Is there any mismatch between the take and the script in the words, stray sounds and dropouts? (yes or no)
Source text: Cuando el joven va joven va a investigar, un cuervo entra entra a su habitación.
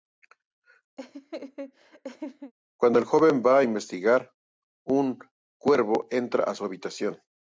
yes